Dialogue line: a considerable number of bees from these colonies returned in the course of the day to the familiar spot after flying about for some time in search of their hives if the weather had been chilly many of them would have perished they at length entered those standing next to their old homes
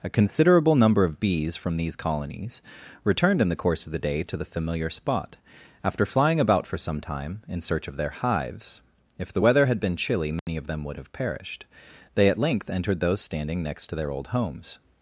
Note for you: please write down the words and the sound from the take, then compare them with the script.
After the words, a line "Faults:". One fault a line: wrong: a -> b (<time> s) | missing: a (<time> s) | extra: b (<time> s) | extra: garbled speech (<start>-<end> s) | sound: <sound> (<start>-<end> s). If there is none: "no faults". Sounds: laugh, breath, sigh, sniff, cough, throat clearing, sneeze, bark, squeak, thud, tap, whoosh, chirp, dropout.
a considerable number of bees from these colonies returned in the course of the day to the familiar spot after flying about for some time in search of their hives if the weather had been chilly many of them would have perished they at length entered those standing next to their old homes
Faults:
sound: dropout (10.4-10.5 s)